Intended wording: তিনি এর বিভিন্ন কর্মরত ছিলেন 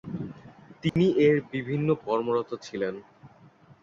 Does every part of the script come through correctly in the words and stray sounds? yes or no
no